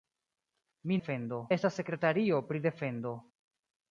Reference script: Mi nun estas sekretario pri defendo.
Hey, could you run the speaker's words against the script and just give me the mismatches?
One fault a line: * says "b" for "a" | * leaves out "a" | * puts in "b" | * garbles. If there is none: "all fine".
* says "defendo" for "nun"